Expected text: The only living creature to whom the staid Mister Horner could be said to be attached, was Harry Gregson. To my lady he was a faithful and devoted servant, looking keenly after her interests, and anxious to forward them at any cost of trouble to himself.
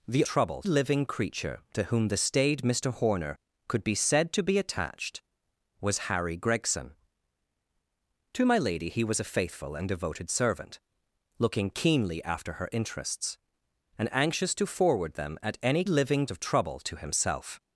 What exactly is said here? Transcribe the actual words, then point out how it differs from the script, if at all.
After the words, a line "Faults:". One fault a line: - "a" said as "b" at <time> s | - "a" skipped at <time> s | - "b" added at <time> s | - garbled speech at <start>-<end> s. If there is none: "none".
The trouble living creature to whom the staid Mister Horner could be said to be attached, was Harry Gregson. To my lady he was a faithful and devoted servant, looking keenly after her interests, and anxious to forward them at any living of trouble to himself.
Faults:
- "only" said as "trouble" at 0.2 s
- "cost" said as "living" at 15.9 s